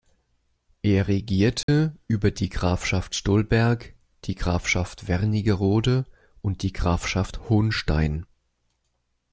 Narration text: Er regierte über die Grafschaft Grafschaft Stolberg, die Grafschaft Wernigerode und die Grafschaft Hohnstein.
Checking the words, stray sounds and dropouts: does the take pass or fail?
fail